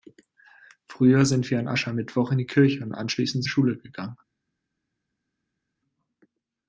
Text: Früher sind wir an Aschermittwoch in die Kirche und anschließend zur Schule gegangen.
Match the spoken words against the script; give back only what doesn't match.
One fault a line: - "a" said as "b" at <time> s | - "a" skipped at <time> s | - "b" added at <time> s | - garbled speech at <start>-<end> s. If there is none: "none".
- "zur" skipped at 3.4 s